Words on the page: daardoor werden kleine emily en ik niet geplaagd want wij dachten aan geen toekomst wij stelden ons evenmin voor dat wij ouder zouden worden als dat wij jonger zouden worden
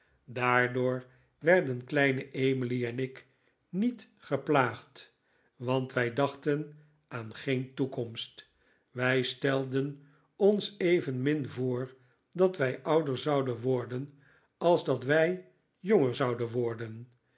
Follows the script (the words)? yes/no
yes